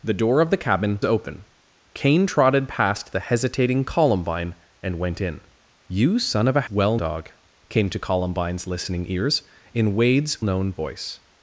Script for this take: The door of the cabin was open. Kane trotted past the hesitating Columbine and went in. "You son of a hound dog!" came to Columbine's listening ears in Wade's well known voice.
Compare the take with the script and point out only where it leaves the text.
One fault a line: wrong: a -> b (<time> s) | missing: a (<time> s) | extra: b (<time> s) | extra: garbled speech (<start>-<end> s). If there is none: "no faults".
missing: was (1.0 s)
wrong: hound -> well (6.7 s)
missing: well (10.4 s)